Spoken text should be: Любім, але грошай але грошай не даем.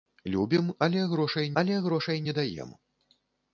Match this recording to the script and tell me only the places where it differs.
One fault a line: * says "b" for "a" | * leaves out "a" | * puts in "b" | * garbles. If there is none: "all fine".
all fine